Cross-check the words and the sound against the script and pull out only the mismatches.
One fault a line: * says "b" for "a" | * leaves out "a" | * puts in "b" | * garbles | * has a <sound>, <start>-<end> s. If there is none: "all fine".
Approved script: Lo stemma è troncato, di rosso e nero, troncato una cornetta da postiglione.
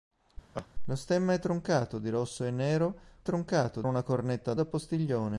* has a laugh, 0.5-0.7 s